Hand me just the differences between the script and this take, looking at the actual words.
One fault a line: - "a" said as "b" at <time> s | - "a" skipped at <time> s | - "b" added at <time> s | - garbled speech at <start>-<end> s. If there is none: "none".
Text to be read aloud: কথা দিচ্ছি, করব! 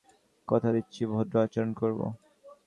- "ভদ্র আচরণ" added at 1.1 s